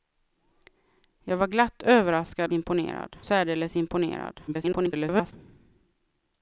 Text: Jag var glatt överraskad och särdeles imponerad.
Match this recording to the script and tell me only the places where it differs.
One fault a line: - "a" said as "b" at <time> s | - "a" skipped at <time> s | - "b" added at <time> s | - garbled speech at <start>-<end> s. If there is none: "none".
- "och" said as "imponerad" at 2.5 s
- garbled speech at 4.5-5.3 s